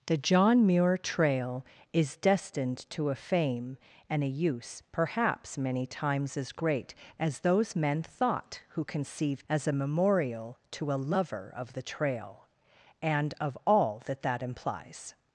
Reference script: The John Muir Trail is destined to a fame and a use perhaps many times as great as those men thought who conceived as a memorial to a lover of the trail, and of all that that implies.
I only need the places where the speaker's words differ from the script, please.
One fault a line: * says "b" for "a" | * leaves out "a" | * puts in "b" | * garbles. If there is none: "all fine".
all fine